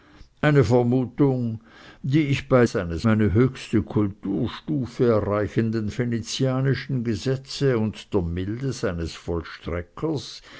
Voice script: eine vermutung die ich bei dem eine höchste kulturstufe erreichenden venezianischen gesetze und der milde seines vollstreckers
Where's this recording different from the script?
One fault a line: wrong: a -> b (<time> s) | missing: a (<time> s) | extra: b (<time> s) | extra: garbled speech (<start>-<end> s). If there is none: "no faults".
wrong: dem -> seines (2.6 s)